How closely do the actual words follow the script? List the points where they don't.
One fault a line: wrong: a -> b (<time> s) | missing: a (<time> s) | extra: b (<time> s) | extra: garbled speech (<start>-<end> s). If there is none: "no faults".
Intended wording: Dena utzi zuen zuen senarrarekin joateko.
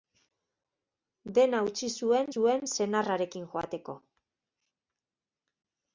no faults